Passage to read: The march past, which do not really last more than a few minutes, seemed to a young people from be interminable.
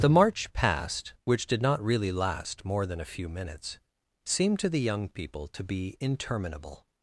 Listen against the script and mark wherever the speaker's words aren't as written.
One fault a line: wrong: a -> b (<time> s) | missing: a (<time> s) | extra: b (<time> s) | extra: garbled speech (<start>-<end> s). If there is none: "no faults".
wrong: do -> did (1.4 s)
wrong: a -> the (4.7 s)
wrong: from -> to (5.5 s)